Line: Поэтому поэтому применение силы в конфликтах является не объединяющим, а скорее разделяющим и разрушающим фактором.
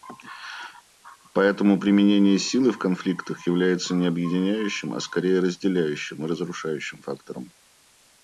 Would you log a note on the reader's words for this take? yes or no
yes